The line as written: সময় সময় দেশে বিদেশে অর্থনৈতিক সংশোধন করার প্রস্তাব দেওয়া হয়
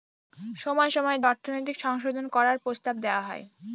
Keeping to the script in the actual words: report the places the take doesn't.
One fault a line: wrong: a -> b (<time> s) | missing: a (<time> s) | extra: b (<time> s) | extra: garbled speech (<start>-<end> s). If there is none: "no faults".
missing: দেশে বিদেশে (1.2 s)